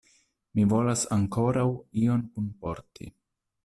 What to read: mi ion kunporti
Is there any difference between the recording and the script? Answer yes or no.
yes